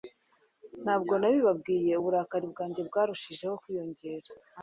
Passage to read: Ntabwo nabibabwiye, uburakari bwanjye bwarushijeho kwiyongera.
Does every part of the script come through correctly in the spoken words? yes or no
yes